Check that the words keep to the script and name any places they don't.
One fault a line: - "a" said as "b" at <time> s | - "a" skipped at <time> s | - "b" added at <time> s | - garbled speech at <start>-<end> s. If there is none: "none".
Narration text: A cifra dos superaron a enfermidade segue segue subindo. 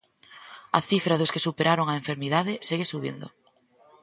- "que" added at 1.3 s
- "segue" skipped at 2.9 s